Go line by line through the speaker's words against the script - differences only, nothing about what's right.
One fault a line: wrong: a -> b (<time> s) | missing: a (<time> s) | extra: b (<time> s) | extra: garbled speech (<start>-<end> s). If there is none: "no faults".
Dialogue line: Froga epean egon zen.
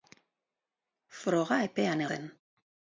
missing: egon (2.0 s)